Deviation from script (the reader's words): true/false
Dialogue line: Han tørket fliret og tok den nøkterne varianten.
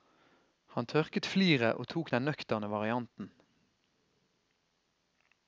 false